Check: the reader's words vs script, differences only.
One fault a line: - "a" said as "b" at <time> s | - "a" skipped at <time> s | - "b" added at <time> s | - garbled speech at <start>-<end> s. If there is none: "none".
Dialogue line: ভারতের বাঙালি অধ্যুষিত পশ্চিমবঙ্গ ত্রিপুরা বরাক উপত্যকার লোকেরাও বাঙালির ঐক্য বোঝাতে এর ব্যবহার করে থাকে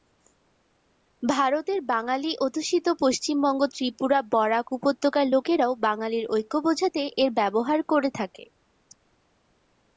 none